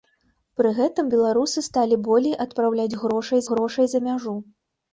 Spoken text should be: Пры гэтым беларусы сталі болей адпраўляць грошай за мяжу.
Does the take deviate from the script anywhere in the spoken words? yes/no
yes